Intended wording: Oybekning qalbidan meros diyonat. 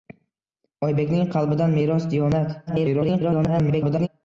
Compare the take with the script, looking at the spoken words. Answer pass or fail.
fail